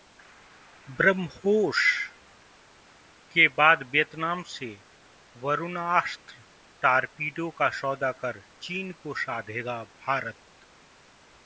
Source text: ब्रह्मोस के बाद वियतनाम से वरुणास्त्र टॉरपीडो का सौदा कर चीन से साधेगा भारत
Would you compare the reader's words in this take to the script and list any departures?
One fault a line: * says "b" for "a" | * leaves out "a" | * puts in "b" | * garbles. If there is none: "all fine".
* says "को" for "से"